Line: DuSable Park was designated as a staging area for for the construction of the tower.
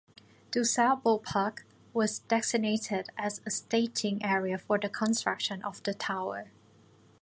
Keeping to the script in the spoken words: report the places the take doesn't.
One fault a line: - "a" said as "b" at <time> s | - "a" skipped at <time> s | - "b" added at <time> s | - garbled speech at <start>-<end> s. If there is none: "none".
- "for" skipped at 4.8 s